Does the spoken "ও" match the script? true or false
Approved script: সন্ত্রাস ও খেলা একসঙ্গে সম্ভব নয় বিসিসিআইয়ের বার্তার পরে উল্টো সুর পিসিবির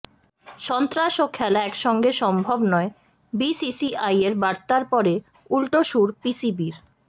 true